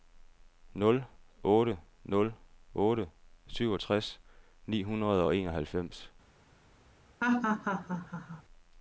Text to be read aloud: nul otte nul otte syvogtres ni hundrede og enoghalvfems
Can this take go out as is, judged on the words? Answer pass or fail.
pass